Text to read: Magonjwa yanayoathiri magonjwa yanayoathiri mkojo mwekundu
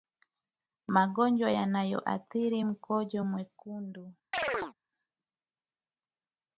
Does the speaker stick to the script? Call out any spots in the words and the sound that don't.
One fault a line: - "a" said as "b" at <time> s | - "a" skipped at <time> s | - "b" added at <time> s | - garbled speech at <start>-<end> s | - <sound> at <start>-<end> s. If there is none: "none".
- "magonjwa yanayoathiri" skipped at 2.6 s
- chirp at 4.3-4.7 s